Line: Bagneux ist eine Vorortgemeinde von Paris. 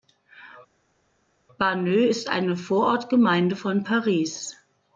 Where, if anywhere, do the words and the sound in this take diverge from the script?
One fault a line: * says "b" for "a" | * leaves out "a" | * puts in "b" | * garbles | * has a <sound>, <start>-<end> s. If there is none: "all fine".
all fine